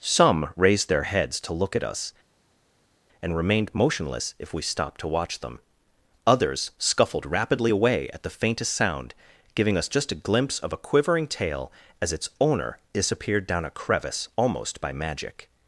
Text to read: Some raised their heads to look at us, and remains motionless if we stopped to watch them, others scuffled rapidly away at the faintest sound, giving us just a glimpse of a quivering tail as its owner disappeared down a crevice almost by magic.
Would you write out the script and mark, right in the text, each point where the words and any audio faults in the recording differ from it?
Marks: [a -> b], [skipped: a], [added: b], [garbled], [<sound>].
Some raised their heads to look at us, and [remains -> remained] motionless if we stopped to watch them, others scuffled rapidly away at the faintest sound, giving us just a glimpse of a quivering tail as its owner disappeared down a crevice almost by magic.